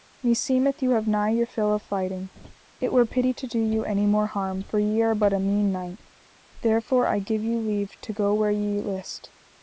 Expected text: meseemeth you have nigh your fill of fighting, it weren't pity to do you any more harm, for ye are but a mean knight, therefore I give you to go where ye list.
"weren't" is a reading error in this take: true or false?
true